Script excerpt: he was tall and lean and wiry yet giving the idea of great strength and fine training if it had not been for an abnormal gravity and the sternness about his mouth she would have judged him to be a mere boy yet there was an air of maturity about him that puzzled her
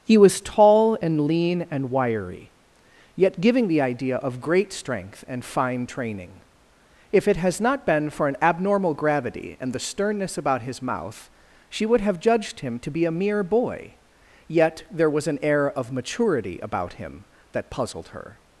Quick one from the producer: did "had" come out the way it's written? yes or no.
no